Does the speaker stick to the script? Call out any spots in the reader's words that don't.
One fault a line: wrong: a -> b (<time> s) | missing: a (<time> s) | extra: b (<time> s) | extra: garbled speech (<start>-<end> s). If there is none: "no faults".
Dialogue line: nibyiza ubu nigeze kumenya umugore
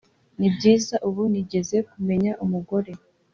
no faults